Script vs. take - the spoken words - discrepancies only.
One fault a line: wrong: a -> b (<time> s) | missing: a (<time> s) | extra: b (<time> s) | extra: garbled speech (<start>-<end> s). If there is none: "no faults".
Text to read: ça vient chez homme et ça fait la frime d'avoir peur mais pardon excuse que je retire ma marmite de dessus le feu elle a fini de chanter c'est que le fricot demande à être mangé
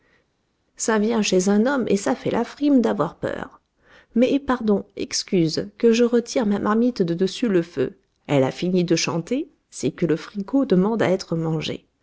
extra: un (1.5 s)